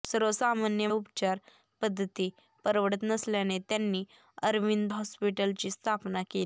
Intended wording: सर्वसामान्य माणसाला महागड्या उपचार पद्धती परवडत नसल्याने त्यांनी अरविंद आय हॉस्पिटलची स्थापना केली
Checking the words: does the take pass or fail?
fail